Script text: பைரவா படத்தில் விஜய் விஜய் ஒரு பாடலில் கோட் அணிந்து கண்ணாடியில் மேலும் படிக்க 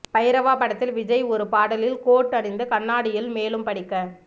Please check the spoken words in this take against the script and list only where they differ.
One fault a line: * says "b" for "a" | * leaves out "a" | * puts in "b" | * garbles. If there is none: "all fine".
* leaves out "விஜய்"